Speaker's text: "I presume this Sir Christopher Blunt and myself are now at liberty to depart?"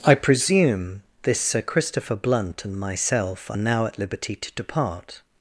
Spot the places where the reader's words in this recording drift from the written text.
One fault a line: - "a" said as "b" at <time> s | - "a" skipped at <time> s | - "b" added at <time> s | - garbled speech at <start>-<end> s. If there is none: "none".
none